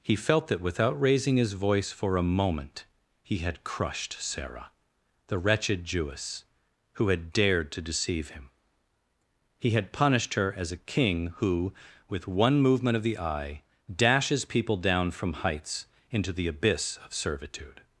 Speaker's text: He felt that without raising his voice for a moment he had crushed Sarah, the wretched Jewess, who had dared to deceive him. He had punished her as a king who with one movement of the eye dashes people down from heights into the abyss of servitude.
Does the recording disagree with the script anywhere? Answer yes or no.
no